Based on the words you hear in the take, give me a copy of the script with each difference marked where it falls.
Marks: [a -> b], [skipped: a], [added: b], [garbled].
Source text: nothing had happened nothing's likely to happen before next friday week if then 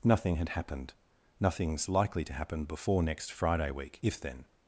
nothing had happened nothing's likely to happen before next friday week if then